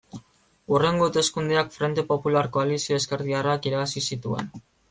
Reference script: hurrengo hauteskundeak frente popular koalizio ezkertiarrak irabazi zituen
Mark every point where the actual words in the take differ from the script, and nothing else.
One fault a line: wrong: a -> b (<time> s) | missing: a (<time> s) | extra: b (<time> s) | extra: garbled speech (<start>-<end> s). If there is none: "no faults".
no faults